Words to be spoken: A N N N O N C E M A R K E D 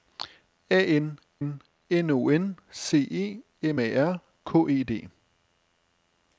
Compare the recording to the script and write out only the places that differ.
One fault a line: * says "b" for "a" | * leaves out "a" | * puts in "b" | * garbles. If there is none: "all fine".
all fine